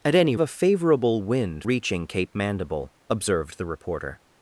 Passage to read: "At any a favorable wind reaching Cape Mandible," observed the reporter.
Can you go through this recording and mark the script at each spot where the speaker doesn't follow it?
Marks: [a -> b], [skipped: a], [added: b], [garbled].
"At any a favorable wind reaching Cape Mandible," observed the reporter.